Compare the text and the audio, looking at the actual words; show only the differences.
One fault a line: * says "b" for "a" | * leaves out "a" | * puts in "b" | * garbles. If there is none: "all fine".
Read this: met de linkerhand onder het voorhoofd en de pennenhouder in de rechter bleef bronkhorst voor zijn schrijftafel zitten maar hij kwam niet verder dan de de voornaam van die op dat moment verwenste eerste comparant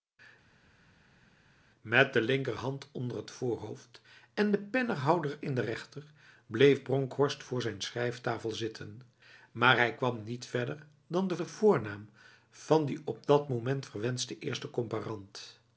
all fine